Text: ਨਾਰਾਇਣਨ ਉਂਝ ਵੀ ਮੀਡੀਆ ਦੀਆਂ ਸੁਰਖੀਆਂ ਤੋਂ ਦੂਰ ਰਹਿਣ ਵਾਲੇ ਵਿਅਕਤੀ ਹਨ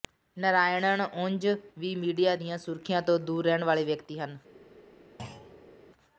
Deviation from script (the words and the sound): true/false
true